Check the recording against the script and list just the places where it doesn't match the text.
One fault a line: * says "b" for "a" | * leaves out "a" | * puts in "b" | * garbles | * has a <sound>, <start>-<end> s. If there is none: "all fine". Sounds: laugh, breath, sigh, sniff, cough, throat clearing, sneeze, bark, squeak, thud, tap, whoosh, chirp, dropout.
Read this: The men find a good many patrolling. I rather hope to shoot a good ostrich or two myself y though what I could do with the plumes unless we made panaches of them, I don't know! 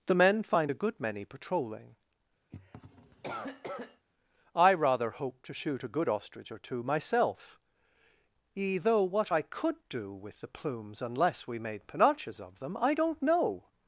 * has a cough, 2.5-4.1 s
* says "e" for "y"